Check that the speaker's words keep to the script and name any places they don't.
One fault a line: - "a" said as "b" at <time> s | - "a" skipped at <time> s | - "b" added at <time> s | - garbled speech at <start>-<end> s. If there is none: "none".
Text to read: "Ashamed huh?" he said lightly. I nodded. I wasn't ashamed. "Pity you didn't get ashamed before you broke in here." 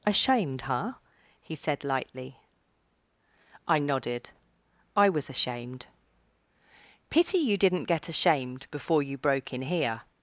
- "wasn't" said as "was" at 5.1 s